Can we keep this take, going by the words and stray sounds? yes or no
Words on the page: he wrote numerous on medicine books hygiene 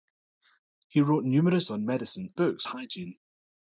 yes